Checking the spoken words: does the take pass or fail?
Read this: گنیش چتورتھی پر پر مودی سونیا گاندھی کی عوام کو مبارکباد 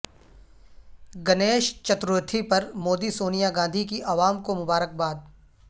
fail